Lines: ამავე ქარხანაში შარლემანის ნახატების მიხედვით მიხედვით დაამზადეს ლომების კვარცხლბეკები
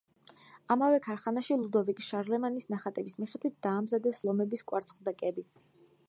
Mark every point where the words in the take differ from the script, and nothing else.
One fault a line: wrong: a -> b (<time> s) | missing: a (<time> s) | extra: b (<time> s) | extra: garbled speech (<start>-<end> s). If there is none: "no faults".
extra: ლუდოვიკ (1.6 s)
missing: მიხედვით (3.6 s)